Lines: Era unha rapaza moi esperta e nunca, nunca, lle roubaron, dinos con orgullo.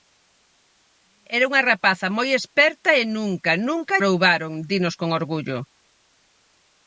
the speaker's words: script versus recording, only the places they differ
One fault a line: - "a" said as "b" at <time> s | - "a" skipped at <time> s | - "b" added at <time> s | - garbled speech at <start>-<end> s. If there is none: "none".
- "lle" skipped at 4.0 s